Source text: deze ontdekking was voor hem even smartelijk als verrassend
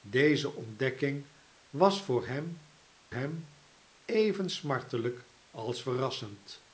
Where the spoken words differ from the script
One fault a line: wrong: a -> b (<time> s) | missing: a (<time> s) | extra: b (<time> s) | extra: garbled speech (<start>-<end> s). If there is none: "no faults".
extra: hem (3.1 s)